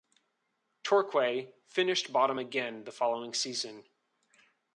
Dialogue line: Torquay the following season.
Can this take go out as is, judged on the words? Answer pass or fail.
fail